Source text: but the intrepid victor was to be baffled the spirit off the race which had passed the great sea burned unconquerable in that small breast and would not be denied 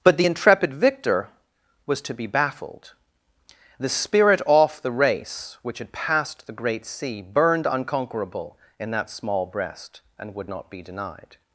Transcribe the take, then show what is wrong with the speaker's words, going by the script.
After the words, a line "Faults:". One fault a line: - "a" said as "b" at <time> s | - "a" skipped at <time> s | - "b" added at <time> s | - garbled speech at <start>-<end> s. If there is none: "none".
but the intrepid victor was to be baffled the spirit off the race which had passed the great sea burned unconquerable in that small breast and would not be denied
Faults:
none